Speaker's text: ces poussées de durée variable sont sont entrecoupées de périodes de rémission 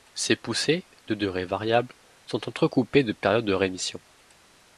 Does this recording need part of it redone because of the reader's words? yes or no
yes